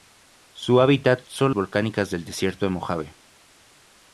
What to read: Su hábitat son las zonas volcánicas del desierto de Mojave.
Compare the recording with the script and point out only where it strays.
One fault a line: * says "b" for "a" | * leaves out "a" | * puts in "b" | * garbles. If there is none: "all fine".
* leaves out "las zonas"